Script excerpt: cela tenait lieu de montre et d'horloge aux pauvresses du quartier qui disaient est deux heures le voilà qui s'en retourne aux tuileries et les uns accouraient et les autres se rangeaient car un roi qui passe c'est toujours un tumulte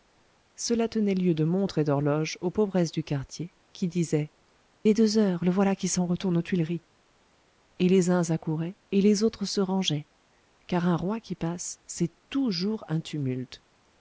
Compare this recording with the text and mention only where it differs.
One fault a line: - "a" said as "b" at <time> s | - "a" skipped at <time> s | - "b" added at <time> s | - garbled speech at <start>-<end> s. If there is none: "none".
none